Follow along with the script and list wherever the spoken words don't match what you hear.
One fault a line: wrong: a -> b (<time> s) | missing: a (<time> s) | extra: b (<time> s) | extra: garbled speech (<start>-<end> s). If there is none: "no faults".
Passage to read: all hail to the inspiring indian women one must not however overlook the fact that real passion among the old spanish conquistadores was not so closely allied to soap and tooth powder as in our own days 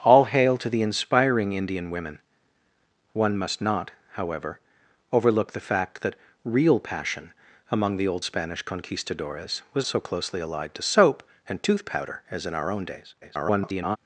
missing: not (9.8 s)
extra: garbled speech (13.2-14.0 s)